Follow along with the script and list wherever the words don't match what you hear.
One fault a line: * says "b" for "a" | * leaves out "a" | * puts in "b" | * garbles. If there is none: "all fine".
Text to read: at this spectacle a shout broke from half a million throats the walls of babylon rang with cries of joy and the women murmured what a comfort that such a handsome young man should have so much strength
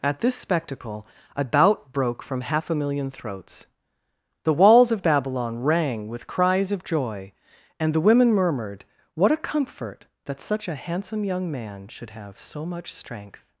* says "bout" for "shout"